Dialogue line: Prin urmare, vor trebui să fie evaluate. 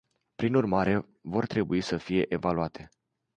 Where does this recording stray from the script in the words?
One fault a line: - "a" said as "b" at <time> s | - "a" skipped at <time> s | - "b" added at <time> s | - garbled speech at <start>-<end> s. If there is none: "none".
none